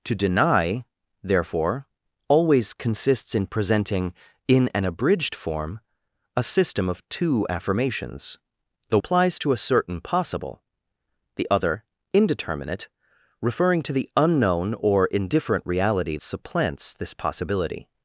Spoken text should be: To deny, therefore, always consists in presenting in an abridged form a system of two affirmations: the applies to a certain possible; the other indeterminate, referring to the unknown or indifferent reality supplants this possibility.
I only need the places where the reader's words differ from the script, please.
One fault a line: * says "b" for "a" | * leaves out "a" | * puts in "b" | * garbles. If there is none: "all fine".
all fine